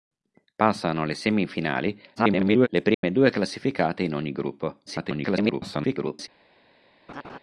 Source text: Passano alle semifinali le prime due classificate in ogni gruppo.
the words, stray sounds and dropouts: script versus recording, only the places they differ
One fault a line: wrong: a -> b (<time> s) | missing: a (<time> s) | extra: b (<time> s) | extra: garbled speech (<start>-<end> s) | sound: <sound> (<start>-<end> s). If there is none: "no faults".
extra: garbled speech (2.2-2.7 s)
sound: dropout (2.9-3.0 s)
extra: garbled speech (4.9-6.3 s)
sound: laugh (7.1-7.4 s)